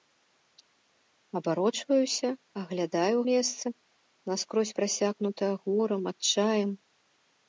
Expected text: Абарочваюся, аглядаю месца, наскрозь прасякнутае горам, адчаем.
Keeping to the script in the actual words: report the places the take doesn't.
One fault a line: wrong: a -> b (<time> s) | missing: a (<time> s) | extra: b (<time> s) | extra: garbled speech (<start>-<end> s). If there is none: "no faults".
no faults